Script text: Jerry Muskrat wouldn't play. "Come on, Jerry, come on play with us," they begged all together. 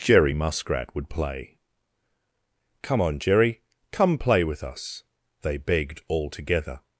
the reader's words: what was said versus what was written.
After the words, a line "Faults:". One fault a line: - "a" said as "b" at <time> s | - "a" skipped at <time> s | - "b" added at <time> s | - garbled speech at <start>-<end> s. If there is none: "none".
Jerry Muskrat would play. "Come on, Jerry, come play with us," they begged all together.
Faults:
- "wouldn't" said as "would" at 0.9 s
- "on" skipped at 4.2 s